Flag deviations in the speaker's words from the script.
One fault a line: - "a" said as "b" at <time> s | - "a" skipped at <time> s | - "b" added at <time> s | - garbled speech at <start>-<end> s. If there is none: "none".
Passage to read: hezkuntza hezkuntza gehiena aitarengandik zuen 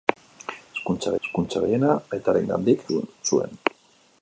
none